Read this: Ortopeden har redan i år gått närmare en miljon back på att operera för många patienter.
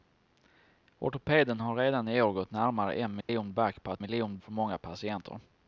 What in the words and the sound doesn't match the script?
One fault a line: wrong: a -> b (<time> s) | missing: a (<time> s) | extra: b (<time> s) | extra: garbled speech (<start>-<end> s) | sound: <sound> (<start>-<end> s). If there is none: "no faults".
sound: dropout (3.2-3.3 s)
wrong: operera -> miljon (4.0 s)